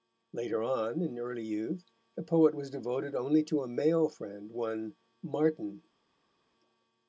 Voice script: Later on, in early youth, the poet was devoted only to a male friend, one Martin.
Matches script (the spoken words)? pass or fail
pass